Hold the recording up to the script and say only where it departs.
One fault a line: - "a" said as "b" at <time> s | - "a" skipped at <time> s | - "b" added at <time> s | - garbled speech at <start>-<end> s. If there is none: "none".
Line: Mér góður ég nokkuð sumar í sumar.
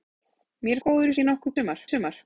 none